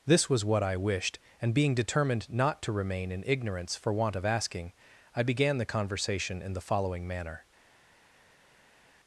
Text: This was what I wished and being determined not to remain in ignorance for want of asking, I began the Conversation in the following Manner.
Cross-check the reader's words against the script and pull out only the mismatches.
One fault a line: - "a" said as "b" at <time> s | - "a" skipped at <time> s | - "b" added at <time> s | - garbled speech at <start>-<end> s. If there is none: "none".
none